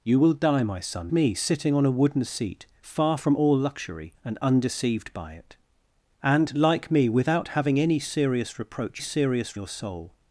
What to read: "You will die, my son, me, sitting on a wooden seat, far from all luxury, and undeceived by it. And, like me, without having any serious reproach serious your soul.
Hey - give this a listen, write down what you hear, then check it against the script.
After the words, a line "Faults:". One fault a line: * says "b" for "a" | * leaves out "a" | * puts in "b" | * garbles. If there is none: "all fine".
"You will die, my son, me, sitting on a wooden seat, far from all luxury, and undeceived by it. And, like me, without having any serious reproach serious your soul.
Faults:
all fine